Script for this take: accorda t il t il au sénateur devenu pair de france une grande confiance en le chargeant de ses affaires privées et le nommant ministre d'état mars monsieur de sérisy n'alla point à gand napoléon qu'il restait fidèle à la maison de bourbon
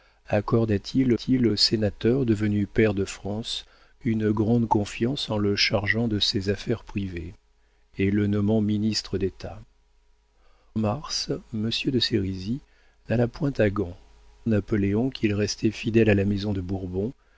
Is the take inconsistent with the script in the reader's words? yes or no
no